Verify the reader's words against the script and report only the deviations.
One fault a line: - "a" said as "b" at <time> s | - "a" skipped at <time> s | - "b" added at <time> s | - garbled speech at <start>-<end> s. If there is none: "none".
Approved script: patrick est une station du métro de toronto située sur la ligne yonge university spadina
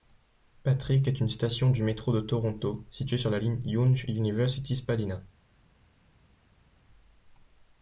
none